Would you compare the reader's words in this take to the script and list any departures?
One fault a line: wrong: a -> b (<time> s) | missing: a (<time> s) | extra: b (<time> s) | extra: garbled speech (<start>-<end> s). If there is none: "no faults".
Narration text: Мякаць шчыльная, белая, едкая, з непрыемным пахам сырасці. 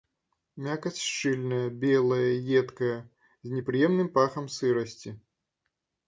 no faults